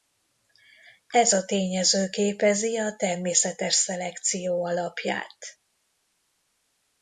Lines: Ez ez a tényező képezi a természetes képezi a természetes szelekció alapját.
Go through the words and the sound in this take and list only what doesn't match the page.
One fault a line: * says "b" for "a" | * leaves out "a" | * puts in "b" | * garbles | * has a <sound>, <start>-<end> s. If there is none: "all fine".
* leaves out "ez"
* leaves out "képezi a természetes"